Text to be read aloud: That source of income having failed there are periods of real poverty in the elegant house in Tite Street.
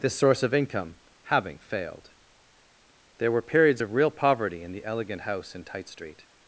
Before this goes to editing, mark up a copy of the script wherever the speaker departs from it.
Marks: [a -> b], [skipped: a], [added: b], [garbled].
[That -> This] source of income having failed there [are -> were] periods of real poverty in the elegant house in Tite Street.